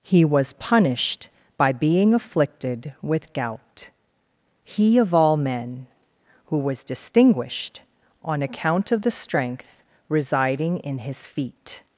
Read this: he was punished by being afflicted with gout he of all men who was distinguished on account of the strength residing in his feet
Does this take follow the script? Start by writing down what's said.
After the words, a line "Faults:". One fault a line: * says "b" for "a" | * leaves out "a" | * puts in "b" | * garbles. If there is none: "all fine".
he was punished by being afflicted with gout he of all men who was distinguished on account of the strength residing in his feet
Faults:
all fine